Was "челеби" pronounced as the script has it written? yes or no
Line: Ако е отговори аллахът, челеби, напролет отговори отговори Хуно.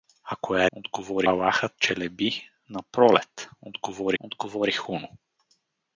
yes